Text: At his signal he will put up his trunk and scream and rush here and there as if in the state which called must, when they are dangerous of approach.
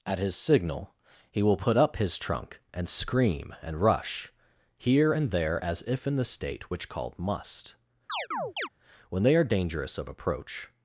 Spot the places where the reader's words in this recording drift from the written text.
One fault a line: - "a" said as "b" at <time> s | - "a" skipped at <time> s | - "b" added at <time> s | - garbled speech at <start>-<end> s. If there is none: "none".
none